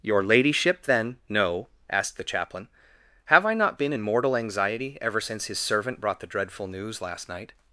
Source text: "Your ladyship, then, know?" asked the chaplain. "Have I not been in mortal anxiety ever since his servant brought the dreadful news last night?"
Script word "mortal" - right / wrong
right